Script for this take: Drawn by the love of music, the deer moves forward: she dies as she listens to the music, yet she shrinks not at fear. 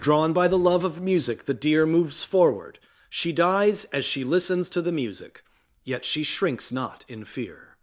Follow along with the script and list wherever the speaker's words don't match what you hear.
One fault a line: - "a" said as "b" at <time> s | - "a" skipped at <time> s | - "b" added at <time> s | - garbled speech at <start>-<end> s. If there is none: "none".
- "at" said as "in" at 7.1 s